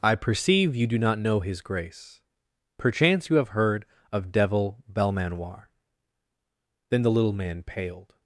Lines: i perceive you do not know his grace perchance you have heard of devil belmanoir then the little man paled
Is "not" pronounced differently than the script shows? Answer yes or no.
no